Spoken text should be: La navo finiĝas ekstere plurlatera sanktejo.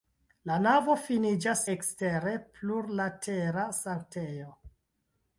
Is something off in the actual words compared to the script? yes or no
no